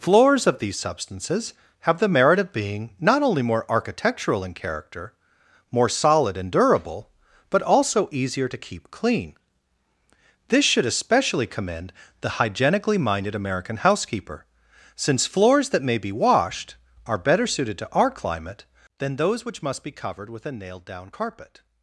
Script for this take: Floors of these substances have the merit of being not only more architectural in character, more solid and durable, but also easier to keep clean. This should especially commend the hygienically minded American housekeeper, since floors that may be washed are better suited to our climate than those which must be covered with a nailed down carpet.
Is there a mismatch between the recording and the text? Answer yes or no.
no